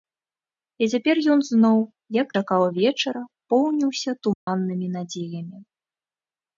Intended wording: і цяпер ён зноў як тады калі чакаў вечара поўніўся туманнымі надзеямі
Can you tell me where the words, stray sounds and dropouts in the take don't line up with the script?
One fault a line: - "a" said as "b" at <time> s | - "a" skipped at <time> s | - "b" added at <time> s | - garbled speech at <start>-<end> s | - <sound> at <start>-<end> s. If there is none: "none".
- "тады калі" skipped at 2.3 s
- dropout at 4.3-4.5 s